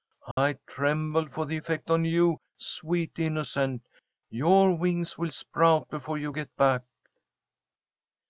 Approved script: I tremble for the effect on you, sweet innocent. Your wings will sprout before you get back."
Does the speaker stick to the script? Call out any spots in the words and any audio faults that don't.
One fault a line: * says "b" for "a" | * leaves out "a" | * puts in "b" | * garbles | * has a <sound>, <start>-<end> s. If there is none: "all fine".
* has a dropout, 0.3-0.4 s